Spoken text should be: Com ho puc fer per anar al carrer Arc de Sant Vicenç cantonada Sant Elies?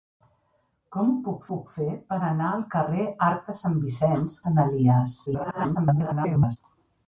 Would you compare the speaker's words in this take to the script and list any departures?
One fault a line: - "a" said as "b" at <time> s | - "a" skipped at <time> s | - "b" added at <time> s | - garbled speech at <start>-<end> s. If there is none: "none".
- "puc" added at 1.5 s
- "cantonada" skipped at 4.4 s
- garbled speech at 5.3-6.6 s